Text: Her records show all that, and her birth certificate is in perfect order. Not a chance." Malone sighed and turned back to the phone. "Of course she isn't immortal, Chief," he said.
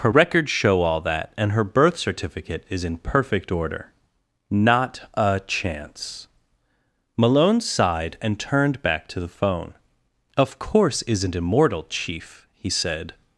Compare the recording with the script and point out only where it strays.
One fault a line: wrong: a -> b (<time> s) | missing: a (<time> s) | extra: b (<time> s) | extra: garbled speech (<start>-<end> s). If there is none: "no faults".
missing: she (11.0 s)